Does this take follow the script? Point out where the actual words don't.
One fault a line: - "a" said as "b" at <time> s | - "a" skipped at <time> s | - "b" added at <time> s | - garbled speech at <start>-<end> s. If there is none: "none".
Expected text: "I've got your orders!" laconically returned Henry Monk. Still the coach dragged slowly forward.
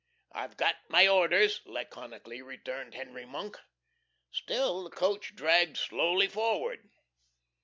- "your" said as "my" at 0.9 s